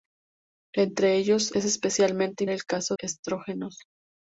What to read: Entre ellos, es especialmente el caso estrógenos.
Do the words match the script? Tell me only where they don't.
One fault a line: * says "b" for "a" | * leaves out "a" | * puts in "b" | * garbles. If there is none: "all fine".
all fine